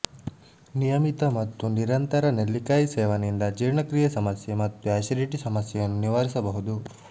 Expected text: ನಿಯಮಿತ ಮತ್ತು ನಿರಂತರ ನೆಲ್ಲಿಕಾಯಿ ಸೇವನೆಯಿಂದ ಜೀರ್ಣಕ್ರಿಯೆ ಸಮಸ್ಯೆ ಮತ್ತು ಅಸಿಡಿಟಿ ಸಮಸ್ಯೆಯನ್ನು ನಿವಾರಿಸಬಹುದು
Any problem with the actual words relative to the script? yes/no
no